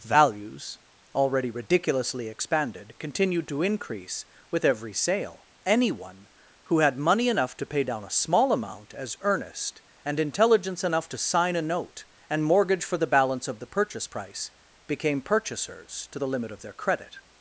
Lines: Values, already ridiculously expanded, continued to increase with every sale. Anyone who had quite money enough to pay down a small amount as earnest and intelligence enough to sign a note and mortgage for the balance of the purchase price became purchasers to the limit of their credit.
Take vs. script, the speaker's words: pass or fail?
fail